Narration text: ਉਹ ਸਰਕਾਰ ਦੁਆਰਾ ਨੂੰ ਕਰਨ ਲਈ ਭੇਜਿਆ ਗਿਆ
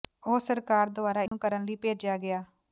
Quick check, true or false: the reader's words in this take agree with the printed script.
true